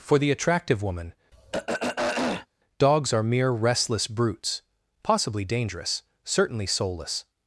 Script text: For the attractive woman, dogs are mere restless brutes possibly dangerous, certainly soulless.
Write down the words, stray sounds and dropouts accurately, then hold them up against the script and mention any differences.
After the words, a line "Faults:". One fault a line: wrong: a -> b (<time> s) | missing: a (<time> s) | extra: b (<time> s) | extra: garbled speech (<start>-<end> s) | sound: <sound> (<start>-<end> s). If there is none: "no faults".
For the attractive woman, dogs are mere restless brutes possibly dangerous, certainly soulless.
Faults:
sound: throat clearing (1.3-2.5 s)